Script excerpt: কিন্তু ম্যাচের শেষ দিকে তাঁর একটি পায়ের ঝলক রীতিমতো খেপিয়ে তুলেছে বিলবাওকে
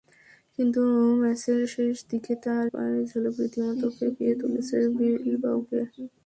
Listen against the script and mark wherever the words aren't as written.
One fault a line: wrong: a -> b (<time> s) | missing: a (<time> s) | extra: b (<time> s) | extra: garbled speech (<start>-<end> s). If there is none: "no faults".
missing: একটি (2.7 s)